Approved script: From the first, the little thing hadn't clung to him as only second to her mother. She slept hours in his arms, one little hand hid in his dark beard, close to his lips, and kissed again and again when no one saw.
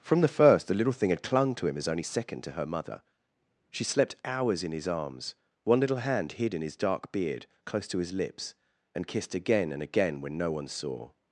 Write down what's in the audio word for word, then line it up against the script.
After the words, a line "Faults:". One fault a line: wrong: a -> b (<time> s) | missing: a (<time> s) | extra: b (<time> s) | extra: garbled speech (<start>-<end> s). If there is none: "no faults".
From the first, the little thing had clung to him as only second to her mother. She slept hours in his arms, one little hand hid in his dark beard, close to his lips, and kissed again and again when no one saw.
Faults:
wrong: hadn't -> had (1.1 s)